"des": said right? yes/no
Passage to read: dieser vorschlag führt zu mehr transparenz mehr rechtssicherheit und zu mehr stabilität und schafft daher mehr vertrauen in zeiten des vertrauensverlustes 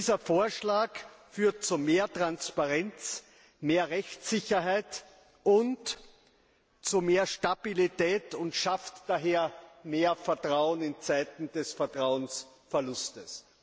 yes